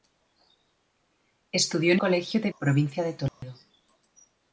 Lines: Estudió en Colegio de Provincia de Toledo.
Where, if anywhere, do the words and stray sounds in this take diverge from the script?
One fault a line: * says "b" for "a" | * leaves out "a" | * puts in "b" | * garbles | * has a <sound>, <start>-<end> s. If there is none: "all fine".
* has a dropout, 3.3-3.4 s